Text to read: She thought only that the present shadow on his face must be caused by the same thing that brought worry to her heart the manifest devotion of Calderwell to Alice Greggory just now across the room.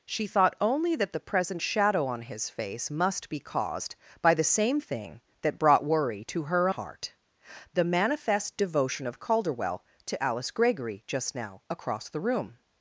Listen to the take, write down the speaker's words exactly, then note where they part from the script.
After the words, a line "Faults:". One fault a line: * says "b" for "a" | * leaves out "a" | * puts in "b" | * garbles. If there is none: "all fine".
She thought only that the present shadow on his face must be caused by the same thing that brought worry to her heart the manifest devotion of Calderwell to Alice Greggory just now across the room.
Faults:
all fine